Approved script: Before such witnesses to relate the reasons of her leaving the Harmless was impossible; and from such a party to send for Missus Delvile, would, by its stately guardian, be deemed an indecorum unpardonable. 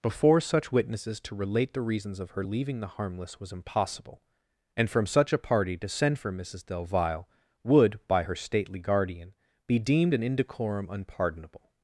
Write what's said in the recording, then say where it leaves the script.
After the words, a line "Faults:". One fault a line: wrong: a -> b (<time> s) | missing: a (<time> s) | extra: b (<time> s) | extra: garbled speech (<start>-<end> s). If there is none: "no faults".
Before such witnesses to relate the reasons of her leaving the Harmless was impossible; and from such a party to send for Missus Delvile, would, by her stately guardian, be deemed an indecorum unpardonable.
Faults:
wrong: its -> her (8.2 s)